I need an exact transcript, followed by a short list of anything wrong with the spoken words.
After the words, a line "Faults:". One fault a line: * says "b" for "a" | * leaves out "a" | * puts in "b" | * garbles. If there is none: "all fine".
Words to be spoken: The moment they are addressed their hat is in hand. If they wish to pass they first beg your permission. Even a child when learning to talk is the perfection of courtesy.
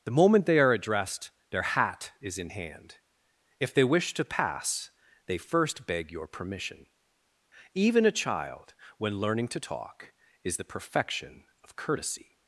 The moment they are addressed their hat is in hand. If they wish to pass they first beg your permission. Even a child when learning to talk is the perfection of courtesy.
Faults:
all fine